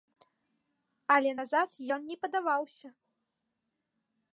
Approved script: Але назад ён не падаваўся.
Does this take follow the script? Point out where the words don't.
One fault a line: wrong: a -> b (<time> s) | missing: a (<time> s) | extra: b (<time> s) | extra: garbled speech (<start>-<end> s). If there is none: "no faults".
no faults